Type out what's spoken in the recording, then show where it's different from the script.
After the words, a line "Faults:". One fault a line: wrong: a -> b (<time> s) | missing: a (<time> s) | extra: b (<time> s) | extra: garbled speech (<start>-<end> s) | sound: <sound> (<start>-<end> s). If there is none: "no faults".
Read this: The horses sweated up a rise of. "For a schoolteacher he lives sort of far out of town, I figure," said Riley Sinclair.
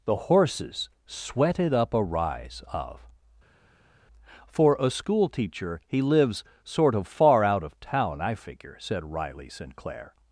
The horses sweated up a rise of. "For a schoolteacher he lives sort of far out of town, I figure," said Riley Sinclair.
Faults:
no faults